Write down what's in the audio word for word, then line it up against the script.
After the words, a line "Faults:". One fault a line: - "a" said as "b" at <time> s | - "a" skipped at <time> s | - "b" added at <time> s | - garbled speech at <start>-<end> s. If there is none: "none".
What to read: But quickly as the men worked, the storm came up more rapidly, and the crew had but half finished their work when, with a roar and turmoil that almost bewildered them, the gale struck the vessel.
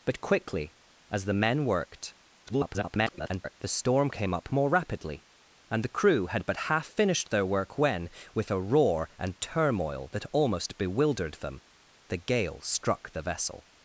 But quickly as the men worked, [garbled] the storm came up more rapidly, and the crew had but half finished their work when, with a roar and turmoil that almost bewildered them, the gale struck the vessel.
Faults:
- garbled speech at 2.5-3.5 s